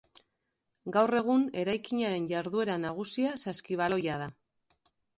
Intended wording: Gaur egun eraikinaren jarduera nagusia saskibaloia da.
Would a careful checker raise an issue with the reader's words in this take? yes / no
no